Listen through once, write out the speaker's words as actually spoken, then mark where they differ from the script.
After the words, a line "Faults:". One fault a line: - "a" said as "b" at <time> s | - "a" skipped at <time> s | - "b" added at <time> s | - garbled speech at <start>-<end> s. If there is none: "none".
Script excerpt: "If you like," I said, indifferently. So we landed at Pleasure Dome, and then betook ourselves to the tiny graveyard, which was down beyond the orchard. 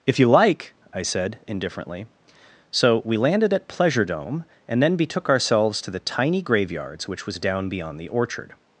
"If you like," I said, indifferently. So we landed at Pleasure Dome, and then betook ourselves to the tiny graveyards, which was down beyond the orchard.
Faults:
- "graveyard" said as "graveyards" at 6.4 s